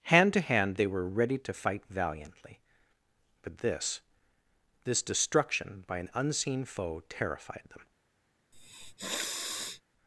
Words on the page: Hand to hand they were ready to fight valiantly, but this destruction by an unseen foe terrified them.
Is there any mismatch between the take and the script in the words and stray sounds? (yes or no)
yes